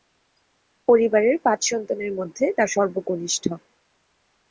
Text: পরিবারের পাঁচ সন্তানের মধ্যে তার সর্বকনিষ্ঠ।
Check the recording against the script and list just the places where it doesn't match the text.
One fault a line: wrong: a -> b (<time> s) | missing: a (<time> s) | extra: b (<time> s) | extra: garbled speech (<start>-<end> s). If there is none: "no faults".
no faults